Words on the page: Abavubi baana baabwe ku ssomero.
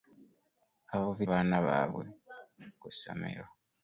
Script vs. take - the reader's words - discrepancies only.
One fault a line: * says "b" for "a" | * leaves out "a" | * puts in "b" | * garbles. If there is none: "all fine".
all fine